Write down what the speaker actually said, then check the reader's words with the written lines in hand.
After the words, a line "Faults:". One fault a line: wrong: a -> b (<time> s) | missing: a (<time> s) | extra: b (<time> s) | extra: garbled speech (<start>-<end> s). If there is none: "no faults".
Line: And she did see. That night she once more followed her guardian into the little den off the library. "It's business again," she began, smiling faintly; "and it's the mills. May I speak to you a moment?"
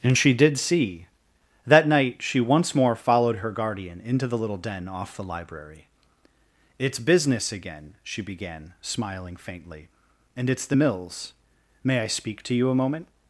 And she did see. That night she once more followed her guardian into the little den off the library. "It's business again," she began, smiling faintly; "and it's the mills. May I speak to you a moment?"
Faults:
no faults